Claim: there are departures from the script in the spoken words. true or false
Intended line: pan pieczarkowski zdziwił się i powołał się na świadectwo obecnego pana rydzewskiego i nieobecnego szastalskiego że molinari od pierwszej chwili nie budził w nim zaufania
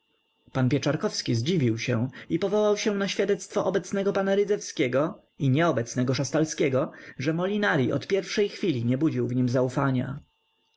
false